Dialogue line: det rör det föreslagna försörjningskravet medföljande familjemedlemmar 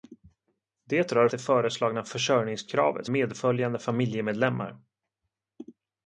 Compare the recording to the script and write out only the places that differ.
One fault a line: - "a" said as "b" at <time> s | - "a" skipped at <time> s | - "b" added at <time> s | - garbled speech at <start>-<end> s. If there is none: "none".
none